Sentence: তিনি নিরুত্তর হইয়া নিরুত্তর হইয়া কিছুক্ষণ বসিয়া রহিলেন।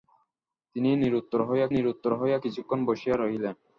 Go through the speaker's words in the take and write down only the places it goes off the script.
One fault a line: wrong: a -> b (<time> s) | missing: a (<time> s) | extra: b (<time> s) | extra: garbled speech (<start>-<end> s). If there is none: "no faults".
no faults